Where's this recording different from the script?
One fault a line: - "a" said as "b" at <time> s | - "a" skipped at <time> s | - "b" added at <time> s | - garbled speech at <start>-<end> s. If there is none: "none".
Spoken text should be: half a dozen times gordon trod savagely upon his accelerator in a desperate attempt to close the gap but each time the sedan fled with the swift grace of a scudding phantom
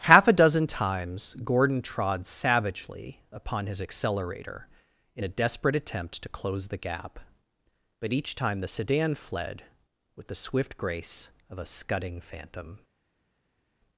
none